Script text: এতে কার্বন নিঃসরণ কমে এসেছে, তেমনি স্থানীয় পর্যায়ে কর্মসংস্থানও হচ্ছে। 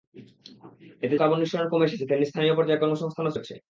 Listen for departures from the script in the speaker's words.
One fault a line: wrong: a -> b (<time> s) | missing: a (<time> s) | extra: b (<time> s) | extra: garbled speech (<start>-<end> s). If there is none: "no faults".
no faults